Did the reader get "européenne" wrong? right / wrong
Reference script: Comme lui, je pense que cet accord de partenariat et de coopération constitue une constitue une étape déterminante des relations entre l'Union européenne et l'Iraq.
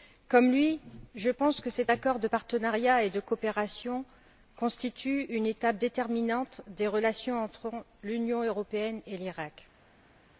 right